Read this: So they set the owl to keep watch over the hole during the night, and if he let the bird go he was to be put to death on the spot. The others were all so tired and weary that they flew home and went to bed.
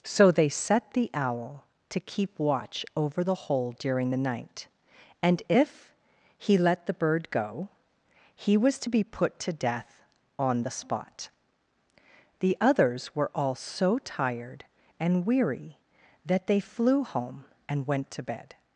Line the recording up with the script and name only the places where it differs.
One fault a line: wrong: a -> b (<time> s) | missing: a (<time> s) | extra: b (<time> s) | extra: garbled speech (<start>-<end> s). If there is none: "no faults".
no faults